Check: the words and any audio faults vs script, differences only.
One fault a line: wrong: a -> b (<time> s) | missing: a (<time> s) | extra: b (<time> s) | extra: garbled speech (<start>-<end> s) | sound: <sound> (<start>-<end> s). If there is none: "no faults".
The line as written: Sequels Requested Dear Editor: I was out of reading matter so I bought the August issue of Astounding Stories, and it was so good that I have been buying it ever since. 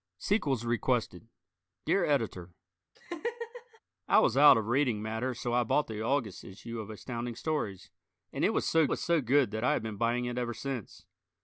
sound: laugh (2.9-3.8 s)
extra: was so (8.9 s)